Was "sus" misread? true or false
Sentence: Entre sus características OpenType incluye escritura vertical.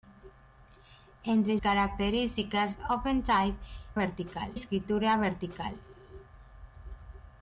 true